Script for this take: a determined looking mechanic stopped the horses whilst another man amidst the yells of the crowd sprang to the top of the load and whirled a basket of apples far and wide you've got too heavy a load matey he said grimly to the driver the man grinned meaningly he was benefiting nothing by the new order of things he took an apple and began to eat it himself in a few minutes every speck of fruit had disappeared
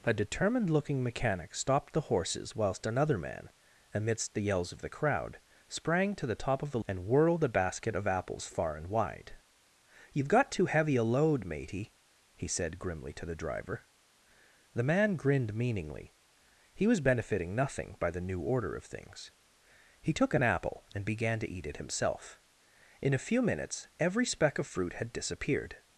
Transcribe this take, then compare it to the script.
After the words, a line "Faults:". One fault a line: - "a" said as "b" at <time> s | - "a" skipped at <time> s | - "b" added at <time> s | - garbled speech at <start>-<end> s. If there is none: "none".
a determined looking mechanic stopped the horses whilst another man amidst the yells of the crowd sprang to the top of the and whirled a basket of apples far and wide you've got too heavy a load matey he said grimly to the driver the man grinned meaningly he was benefiting nothing by the new order of things he took an apple and began to eat it himself in a few minutes every speck of fruit had disappeared
Faults:
- "load" skipped at 6.8 s